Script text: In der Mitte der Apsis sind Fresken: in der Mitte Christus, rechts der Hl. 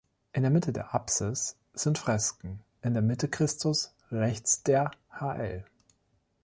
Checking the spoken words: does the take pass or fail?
pass